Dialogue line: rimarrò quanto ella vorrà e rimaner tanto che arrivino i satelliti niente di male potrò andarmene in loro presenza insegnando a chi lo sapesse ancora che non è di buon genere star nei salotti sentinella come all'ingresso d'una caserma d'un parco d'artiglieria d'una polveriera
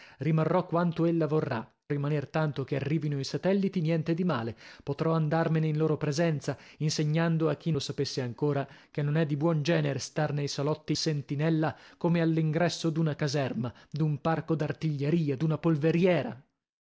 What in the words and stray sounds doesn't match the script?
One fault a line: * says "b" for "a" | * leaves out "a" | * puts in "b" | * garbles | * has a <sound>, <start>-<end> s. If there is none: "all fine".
all fine